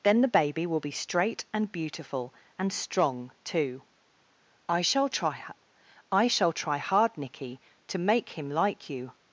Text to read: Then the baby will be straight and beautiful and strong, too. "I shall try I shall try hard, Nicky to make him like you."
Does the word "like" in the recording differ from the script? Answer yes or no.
no